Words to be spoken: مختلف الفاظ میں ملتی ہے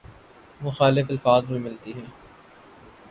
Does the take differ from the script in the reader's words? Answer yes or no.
no